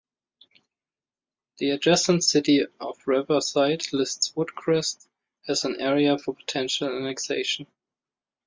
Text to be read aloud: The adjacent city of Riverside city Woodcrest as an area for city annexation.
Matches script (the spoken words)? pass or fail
fail